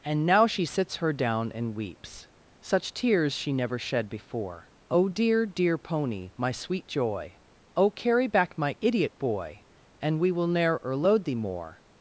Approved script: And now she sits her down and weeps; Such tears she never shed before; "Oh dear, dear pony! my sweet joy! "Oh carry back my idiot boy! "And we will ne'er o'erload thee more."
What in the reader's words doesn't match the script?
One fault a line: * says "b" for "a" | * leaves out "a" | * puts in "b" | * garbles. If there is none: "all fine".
all fine